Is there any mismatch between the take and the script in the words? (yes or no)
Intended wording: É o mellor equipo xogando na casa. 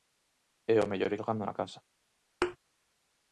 yes